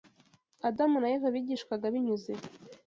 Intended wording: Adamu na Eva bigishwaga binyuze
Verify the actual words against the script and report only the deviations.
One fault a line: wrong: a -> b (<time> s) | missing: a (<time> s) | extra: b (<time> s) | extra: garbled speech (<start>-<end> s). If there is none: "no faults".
no faults